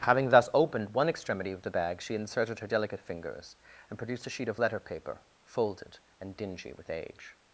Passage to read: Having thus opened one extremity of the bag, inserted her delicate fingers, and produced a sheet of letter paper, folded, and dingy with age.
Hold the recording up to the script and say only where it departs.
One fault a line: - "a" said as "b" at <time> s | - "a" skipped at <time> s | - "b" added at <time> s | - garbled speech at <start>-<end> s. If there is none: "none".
- "she" added at 2.0 s